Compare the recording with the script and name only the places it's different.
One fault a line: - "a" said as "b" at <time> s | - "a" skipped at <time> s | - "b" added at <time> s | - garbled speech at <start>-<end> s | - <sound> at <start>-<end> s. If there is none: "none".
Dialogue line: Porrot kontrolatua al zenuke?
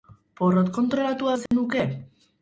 - dropout at 1.5-1.5 s